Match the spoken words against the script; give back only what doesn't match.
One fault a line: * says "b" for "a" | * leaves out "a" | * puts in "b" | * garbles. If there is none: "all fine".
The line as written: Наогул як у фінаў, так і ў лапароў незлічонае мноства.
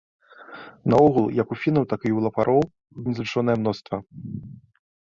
all fine